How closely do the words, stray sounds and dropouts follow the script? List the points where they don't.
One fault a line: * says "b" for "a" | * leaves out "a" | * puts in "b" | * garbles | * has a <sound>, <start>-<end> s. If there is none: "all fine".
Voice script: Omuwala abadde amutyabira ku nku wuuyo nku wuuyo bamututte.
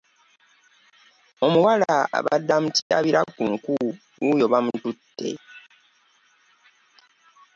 * has a dropout, 2.8-2.9 s
* leaves out "nku wuuyo"